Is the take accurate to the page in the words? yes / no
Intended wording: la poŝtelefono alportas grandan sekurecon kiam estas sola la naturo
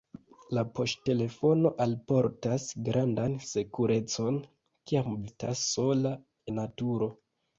yes